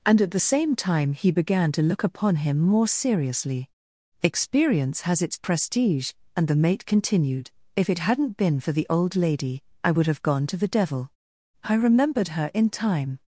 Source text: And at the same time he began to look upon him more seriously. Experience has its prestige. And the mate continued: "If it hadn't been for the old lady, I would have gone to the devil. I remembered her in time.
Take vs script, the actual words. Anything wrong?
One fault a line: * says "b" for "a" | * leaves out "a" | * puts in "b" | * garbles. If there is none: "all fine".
all fine